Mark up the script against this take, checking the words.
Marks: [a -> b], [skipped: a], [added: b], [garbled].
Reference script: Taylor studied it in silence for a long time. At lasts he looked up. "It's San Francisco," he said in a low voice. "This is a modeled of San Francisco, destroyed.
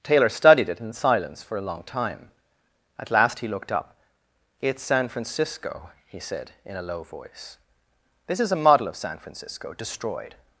Taylor studied it in silence for a long time. At [lasts -> last] he looked up. "It's San Francisco," he said in a low voice. "This is a [modeled -> model] of San Francisco, destroyed.